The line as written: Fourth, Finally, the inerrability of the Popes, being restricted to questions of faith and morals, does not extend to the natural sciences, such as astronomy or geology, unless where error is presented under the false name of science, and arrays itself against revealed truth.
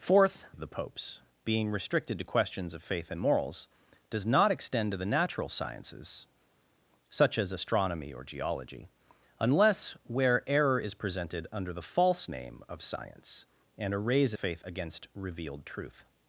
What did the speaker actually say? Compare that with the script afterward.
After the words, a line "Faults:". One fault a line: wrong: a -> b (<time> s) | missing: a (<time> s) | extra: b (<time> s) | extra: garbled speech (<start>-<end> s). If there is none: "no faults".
Fourth, Of the Popes, being restricted to questions of faith and morals, does not extend to the natural sciences, such as astronomy or geology, unless where error is presented under the false name of science, and arrays faith against revealed truth.
Faults:
missing: Finally the inerrability (0.5 s)
wrong: itself -> faith (14.4 s)